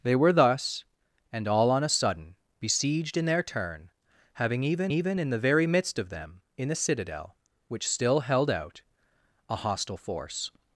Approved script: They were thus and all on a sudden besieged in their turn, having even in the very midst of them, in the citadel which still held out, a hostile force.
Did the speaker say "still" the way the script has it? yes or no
yes